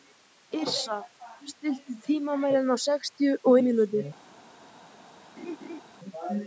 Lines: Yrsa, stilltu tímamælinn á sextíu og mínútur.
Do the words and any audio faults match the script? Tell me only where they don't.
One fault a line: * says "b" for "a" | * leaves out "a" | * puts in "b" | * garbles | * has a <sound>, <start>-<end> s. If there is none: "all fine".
* has a laugh, 5.4-5.8 s